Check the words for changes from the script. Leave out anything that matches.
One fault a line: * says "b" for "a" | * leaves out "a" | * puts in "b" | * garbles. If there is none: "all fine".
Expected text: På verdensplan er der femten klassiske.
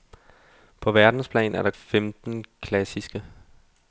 all fine